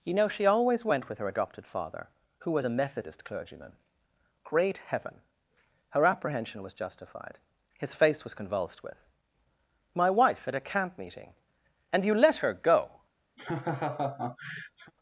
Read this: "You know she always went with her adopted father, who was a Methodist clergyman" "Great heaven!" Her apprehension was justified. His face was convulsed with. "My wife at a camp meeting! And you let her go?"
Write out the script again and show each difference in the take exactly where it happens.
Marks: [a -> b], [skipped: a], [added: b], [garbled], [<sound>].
"You know she always went with her adopted father, who was a Methodist clergyman" "Great heaven!" Her apprehension was justified. His face was convulsed with. "My wife at a camp meeting! And you let her go?" [laugh]